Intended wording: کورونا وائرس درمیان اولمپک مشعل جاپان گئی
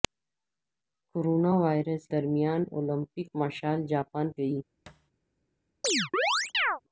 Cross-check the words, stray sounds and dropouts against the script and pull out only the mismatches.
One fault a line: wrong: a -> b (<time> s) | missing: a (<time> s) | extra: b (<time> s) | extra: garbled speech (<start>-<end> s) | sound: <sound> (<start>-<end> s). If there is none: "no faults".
sound: thud (4.9-5.1 s)
sound: chirp (5.8-6.8 s)